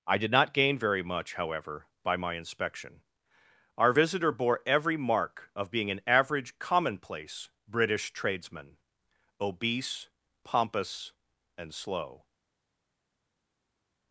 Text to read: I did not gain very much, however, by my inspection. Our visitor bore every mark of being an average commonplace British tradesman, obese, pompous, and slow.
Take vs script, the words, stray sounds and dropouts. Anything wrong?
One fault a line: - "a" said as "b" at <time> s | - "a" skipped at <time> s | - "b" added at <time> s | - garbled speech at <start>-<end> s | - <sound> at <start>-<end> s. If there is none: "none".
none